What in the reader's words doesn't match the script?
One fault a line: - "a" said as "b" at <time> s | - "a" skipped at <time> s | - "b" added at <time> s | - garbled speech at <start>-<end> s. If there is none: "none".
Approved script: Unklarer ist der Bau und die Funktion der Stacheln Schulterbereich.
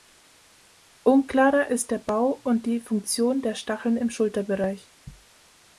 - "im" added at 4.0 s